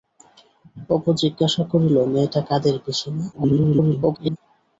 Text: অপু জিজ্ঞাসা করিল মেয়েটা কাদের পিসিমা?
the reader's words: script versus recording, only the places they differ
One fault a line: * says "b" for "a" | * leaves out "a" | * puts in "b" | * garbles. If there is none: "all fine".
* garbles